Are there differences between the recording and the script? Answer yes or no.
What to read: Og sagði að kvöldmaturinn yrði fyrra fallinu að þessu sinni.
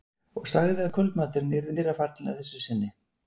no